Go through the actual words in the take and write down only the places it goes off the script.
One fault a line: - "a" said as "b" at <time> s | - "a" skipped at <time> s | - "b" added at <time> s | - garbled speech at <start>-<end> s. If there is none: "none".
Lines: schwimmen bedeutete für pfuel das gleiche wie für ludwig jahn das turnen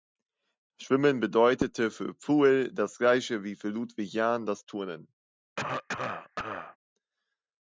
none